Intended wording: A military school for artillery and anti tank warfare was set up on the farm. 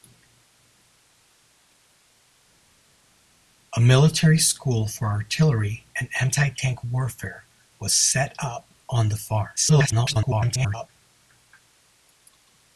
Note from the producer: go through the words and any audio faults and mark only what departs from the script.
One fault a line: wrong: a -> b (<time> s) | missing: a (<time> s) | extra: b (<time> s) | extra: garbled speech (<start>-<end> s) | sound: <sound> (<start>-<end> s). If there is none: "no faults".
extra: garbled speech (9.6-10.9 s)